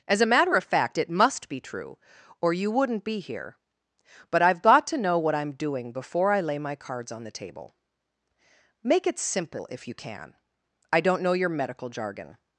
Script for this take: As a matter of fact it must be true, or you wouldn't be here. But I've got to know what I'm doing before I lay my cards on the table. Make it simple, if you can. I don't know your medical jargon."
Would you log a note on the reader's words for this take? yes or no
no